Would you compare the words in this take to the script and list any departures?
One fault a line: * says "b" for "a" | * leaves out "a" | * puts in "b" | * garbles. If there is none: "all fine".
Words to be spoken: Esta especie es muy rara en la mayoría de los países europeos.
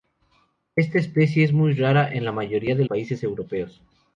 * leaves out "los"